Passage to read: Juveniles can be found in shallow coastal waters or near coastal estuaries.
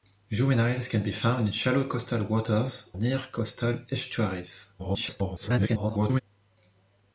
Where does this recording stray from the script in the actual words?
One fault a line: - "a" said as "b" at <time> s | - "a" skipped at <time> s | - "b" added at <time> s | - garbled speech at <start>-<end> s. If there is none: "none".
- "or" skipped at 2.9 s
- garbled speech at 4.8-6.2 s